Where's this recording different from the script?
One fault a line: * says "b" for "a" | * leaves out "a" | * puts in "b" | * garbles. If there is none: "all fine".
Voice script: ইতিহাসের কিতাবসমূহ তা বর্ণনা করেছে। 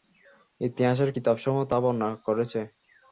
all fine